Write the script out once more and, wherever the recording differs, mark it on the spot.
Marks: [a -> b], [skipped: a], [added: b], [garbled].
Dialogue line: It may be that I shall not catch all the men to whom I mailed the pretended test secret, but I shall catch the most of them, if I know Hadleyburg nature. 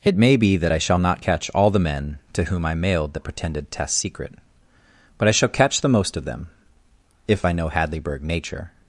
It may be that I shall not catch all the men to whom I mailed the pretended test secret, but I shall catch the most of them, if I know Hadleyburg nature.